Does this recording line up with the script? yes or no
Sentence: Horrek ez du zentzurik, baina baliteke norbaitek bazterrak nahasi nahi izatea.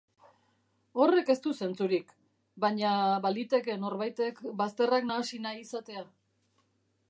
yes